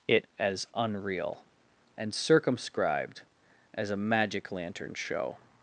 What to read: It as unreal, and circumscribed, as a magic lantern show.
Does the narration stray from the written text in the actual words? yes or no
no